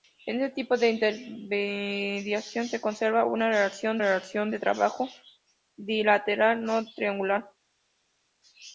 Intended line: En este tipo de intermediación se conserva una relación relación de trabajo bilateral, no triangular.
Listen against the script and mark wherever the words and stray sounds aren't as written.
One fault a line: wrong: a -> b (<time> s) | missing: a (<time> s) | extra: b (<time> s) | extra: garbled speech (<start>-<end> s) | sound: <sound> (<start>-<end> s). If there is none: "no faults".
no faults